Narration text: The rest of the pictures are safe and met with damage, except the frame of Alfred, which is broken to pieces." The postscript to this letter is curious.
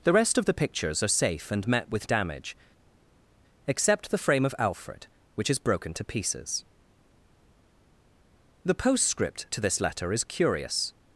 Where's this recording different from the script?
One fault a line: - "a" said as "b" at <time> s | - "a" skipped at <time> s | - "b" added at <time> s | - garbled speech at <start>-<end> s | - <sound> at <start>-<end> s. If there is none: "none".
none